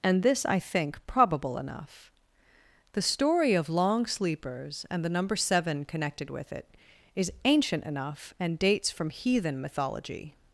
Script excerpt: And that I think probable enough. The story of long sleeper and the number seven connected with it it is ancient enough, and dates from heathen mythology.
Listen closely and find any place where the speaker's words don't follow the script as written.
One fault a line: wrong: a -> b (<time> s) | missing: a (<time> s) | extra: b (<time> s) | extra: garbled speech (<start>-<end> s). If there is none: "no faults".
wrong: that -> this (0.2 s)
wrong: sleeper -> sleepers (4.0 s)
missing: it (6.7 s)